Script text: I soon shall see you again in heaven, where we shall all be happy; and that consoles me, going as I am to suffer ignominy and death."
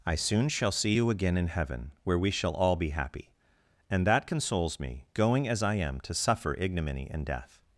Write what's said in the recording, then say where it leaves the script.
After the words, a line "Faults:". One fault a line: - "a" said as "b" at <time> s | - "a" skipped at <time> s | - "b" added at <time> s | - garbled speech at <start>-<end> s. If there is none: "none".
I soon shall see you again in heaven, where we shall all be happy; and that consoles me, going as I am to suffer ignominy and death."
Faults:
none